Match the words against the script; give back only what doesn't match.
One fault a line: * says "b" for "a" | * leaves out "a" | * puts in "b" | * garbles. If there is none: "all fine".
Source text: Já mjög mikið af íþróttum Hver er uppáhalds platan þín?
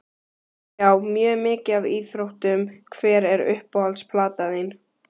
all fine